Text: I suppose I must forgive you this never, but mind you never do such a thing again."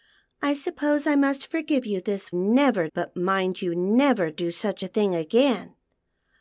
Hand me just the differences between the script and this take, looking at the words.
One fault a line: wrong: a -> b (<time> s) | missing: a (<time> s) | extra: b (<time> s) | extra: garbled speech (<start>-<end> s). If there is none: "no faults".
no faults